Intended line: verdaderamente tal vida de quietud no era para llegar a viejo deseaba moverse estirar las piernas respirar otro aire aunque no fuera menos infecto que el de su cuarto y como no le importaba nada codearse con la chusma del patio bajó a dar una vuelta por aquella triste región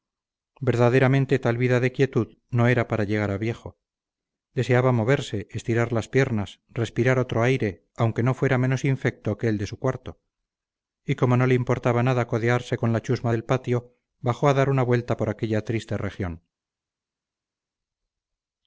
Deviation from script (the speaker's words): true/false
false